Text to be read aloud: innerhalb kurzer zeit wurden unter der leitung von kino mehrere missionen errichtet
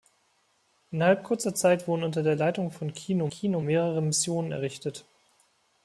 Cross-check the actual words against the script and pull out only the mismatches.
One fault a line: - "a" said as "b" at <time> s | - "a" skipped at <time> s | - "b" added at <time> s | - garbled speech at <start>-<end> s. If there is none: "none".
- "kino" added at 3.3 s